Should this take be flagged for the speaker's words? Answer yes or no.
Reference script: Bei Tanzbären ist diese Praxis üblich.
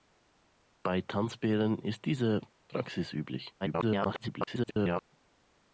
yes